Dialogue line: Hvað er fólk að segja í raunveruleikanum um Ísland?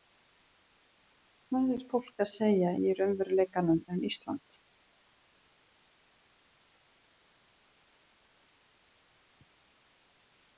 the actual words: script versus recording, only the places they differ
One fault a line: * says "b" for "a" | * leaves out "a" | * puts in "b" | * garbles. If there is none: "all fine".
all fine